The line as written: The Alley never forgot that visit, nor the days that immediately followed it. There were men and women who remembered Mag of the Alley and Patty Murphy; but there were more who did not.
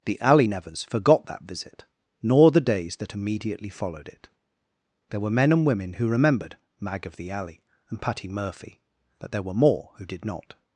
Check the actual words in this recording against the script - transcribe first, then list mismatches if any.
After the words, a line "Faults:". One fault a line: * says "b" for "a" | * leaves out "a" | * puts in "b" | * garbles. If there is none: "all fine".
The Alley nevers forgot that visit, nor the days that immediately followed it. There were men and women who remembered Mag of the Alley and Patty Murphy; but there were more who did not.
Faults:
* says "nevers" for "never"